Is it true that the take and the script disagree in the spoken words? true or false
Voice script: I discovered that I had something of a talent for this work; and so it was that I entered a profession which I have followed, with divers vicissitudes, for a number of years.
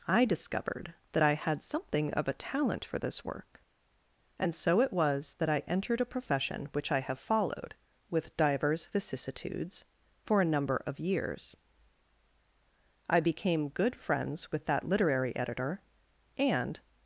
true